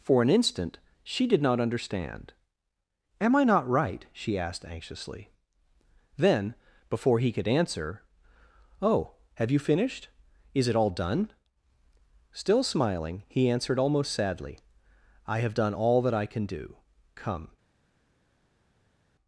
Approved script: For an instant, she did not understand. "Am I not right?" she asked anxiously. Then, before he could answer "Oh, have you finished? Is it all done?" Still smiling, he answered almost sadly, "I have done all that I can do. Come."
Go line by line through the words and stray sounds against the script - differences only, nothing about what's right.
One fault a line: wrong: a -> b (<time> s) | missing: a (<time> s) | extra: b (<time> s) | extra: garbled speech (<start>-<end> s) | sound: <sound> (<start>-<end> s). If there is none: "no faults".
no faults